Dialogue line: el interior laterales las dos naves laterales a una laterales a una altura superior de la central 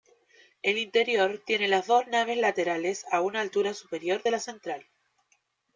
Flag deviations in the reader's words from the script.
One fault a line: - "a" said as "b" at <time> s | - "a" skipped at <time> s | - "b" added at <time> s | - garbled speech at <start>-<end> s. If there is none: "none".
- "laterales" said as "tiene" at 1.4 s
- "laterales a una" skipped at 3.4 s